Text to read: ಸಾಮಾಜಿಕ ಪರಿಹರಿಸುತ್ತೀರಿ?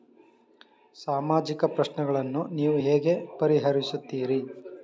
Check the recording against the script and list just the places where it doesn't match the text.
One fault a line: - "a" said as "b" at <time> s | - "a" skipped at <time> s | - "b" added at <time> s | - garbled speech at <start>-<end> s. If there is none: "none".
- "ಪ್ರಶ್ನೆಗಳನ್ನು ನೀವು ಹೇಗೆ" added at 1.6 s